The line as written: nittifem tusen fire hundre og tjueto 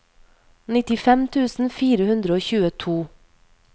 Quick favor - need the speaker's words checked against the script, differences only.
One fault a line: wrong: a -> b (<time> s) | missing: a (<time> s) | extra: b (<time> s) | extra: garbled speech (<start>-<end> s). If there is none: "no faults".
no faults